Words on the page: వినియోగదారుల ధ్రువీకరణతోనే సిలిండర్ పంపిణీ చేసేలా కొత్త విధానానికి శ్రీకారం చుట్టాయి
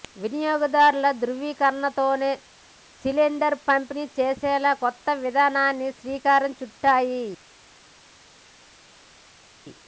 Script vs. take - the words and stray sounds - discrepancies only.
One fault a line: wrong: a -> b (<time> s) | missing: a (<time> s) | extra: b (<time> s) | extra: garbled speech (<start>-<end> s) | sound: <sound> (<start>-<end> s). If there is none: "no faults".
no faults